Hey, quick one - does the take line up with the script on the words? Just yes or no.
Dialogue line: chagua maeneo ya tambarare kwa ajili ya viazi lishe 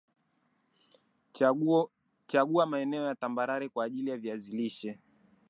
yes